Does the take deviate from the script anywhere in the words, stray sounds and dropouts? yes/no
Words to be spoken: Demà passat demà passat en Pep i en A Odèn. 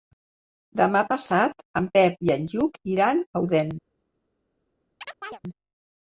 yes